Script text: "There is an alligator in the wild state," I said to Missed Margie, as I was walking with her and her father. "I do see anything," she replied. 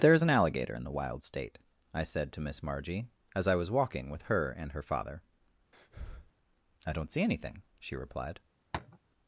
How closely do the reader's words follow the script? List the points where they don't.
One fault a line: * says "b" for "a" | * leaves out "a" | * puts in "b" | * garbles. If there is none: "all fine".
* says "Miss" for "Missed"
* says "don't" for "do"